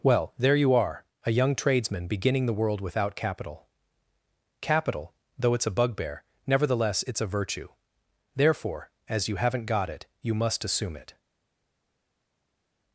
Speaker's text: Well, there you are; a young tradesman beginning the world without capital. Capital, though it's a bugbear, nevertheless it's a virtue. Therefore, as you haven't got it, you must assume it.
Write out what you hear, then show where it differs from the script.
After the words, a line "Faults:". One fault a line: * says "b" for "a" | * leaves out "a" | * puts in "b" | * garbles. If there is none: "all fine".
Well, there you are; a young tradesman beginning the world without capital. Capital, though it's a bugbear, nevertheless it's a virtue. Therefore, as you haven't got it, you must assume it.
Faults:
all fine